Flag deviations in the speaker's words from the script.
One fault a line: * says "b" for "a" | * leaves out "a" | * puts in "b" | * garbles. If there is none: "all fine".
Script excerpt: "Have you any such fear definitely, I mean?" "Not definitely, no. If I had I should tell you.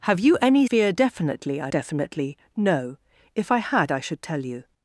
* leaves out "such"
* leaves out "mean Not"